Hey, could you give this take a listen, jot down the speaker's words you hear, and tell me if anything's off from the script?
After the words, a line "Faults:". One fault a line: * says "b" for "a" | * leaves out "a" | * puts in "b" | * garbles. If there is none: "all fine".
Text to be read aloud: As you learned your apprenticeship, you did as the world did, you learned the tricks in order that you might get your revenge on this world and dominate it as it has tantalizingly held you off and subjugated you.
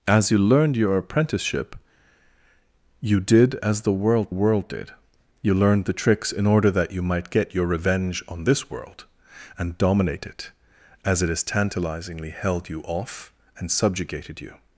As you learned your apprenticeship, you did as the world world did, you learned the tricks in order that you might get your revenge on this world and dominate it as it has tantalizingly held you off and subjugated you.
Faults:
* puts in "world"